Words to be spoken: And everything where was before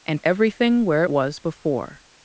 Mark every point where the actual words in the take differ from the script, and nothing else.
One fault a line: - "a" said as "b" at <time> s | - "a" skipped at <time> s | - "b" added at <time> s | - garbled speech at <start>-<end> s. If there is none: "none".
none